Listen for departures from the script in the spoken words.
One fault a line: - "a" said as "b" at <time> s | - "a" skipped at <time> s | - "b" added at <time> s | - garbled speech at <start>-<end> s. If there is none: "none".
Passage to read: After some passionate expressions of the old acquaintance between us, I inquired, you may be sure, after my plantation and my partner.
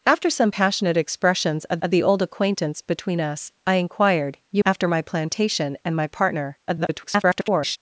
- "of" added at 1.8 s
- "may be sure" skipped at 4.6 s
- garbled speech at 6.7-7.8 s